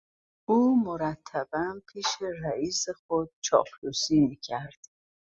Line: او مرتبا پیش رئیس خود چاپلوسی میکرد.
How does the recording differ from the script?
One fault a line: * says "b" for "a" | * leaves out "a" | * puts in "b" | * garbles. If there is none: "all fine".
all fine